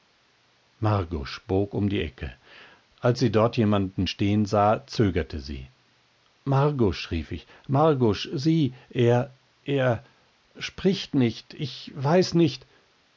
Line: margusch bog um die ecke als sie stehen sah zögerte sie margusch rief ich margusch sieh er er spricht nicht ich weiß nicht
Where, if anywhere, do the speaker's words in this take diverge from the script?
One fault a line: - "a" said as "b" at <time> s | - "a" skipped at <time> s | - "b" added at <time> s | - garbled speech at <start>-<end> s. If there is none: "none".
- "dort jemand" added at 3.3 s